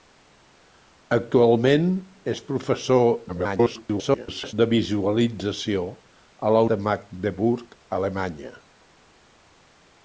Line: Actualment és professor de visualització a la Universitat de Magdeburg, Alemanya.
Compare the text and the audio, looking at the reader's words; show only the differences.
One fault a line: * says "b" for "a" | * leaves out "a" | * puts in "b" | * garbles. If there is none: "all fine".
* garbles
* leaves out "Universitat"